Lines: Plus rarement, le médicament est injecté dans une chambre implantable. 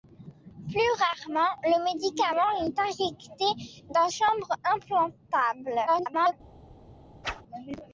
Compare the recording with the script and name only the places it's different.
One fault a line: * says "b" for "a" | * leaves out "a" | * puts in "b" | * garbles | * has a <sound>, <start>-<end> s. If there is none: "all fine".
* leaves out "une"
* garbles
* has a whoosh, 7.2-7.4 s